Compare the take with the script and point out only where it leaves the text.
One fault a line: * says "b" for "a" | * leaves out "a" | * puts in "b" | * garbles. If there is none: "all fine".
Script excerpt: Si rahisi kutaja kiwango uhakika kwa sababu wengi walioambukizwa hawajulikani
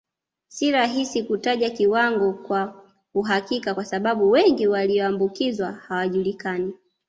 * puts in "kwa"